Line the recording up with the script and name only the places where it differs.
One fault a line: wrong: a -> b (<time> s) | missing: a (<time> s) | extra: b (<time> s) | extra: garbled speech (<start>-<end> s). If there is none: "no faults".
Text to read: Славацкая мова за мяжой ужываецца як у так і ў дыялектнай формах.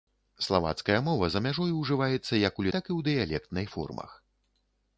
no faults